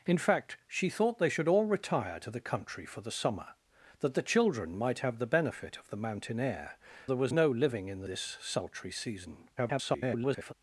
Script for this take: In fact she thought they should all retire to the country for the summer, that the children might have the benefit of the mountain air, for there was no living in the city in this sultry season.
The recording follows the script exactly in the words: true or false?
false